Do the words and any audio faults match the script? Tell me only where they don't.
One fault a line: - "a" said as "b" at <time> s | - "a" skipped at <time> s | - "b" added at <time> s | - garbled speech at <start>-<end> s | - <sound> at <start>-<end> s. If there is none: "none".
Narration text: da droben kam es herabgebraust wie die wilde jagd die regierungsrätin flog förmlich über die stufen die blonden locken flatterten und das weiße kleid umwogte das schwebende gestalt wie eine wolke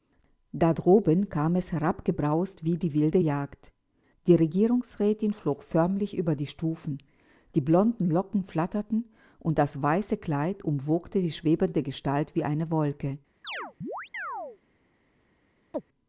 - "das" said as "die" at 11.2 s
- chirp at 13.4-14.6 s
- chirp at 15.7-15.8 s